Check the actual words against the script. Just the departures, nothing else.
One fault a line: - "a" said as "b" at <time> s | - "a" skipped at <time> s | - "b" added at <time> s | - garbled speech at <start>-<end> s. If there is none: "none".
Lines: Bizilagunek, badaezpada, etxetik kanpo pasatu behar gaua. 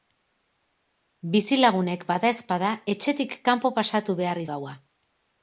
none